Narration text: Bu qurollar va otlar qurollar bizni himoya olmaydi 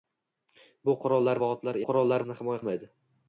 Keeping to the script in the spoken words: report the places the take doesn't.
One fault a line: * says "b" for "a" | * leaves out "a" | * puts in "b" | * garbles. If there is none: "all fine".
all fine